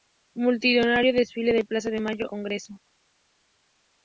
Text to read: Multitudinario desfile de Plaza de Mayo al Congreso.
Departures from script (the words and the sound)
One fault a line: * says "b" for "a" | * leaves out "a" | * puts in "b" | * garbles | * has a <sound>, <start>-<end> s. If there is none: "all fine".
* leaves out "al"